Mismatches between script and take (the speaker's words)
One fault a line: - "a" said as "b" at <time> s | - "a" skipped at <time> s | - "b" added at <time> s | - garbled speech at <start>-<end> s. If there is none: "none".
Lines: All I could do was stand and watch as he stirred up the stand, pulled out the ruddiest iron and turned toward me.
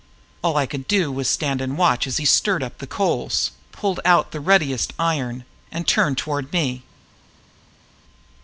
- "stand" said as "coals" at 2.9 s